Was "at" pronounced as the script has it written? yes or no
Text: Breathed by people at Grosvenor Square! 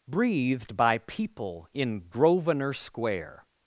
no